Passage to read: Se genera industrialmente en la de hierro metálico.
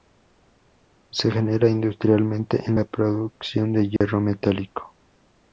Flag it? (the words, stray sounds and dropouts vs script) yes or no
yes